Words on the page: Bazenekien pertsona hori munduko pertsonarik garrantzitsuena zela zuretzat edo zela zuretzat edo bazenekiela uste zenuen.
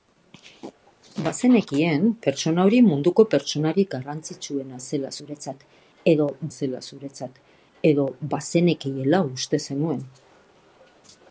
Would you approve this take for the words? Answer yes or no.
yes